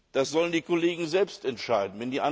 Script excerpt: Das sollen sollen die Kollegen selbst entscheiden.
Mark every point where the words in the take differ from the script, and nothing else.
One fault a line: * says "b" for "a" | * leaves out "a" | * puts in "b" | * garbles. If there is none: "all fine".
* leaves out "sollen"